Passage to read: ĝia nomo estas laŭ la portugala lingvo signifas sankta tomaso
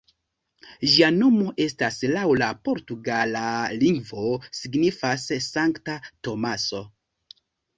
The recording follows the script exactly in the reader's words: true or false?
true